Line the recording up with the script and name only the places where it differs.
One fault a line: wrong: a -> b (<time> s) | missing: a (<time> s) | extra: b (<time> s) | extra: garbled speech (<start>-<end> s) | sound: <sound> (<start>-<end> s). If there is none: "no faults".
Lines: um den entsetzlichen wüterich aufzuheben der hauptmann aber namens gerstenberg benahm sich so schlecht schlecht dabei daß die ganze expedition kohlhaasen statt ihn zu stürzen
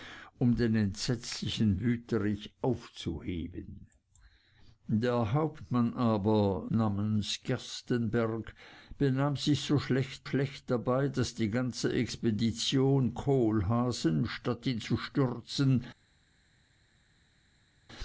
no faults